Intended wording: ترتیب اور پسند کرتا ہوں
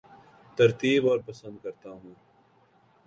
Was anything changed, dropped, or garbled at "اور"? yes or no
no